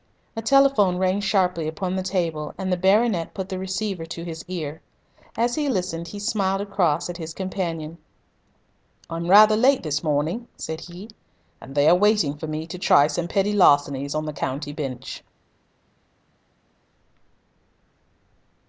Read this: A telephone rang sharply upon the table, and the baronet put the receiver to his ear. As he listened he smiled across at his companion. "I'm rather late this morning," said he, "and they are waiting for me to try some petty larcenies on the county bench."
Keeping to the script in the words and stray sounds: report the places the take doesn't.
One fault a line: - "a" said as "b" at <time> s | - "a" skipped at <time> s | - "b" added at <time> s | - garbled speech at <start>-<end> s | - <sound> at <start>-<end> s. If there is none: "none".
none